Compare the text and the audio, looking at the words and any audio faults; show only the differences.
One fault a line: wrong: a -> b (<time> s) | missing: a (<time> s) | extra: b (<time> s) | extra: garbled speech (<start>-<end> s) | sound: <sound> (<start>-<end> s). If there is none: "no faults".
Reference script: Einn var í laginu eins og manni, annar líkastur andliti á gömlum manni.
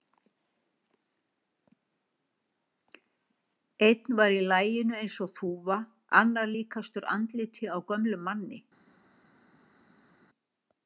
wrong: manni -> þúfa (5.4 s)